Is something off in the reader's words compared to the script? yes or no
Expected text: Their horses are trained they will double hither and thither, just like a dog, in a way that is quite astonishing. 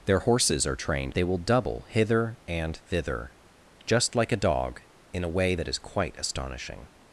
no